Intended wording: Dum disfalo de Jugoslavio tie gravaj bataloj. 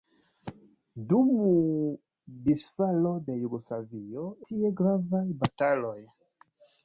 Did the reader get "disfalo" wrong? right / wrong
right